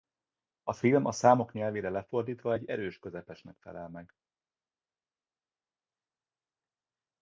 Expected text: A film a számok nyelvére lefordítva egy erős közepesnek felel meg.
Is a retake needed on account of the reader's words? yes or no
no